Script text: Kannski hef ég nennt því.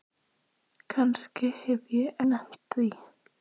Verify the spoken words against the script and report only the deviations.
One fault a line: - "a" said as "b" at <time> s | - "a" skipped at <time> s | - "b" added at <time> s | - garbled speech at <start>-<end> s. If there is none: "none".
none